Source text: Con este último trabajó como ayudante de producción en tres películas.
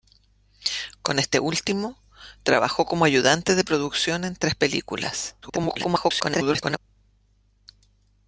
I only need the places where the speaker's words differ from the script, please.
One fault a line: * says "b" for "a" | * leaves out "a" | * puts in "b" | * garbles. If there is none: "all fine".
* garbles